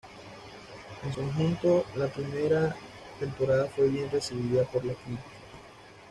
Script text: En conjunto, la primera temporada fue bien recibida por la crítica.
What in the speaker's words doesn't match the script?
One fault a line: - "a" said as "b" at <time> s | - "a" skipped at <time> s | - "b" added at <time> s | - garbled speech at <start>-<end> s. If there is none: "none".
none